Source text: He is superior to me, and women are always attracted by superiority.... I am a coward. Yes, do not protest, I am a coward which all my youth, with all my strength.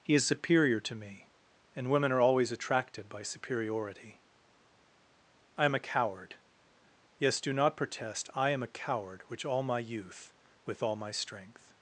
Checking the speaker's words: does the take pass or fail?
pass